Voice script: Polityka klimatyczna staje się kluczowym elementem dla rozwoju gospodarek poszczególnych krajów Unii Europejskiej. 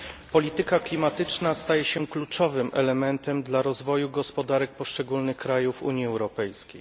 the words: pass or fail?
pass